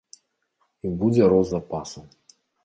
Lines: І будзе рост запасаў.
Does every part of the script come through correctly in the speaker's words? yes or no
yes